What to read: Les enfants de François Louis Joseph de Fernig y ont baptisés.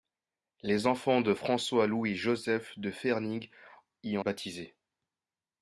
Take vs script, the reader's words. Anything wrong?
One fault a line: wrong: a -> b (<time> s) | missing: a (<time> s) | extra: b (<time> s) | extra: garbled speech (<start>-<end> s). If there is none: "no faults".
no faults